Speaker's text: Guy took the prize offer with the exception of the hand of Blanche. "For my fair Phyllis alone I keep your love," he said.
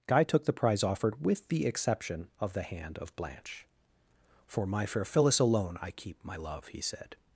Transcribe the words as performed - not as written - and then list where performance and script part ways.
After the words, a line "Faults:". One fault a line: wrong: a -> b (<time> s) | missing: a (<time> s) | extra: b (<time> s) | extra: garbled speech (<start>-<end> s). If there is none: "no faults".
Guy took the prize offered with the exception of the hand of Blanche. "For my fair Phyllis alone I keep my love," he said.
Faults:
wrong: offer -> offered (0.8 s)
wrong: your -> my (6.2 s)